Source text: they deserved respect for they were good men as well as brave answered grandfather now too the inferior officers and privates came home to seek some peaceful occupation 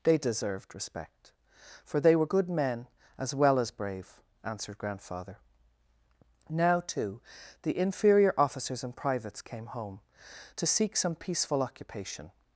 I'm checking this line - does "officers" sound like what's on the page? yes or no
yes